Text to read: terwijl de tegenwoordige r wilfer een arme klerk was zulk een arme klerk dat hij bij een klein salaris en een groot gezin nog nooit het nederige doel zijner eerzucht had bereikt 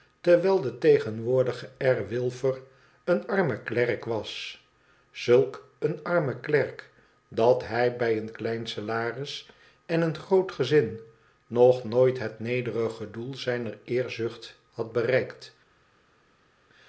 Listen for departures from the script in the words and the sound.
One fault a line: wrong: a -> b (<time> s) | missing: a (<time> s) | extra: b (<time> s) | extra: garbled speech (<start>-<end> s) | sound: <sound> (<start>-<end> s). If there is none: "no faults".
no faults